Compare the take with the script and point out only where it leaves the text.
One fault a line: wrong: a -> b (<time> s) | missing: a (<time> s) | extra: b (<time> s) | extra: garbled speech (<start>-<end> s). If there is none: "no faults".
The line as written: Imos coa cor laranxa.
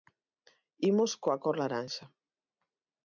no faults